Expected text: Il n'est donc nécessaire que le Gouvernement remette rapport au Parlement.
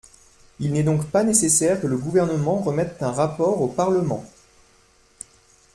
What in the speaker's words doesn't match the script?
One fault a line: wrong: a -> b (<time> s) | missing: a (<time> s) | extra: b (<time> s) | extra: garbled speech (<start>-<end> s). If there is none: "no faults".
extra: pas (1.1 s)
extra: un (3.0 s)